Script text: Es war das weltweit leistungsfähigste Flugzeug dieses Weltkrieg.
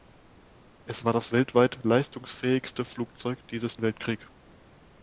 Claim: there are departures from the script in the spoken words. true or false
false